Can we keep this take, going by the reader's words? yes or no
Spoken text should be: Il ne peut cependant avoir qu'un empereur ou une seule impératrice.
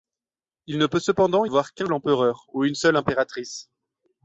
yes